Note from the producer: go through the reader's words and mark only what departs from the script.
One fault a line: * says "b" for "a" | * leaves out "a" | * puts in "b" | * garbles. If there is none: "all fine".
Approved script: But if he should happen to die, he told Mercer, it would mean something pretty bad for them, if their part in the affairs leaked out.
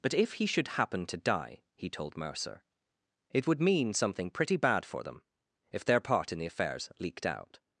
all fine